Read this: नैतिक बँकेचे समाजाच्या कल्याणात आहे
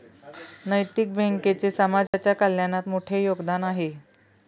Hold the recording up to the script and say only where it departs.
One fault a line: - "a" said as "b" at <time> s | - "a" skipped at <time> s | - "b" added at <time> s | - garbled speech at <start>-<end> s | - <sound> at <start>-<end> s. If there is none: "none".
- dropout at 2.1-2.1 s
- "मोठे योगदान" added at 2.9 s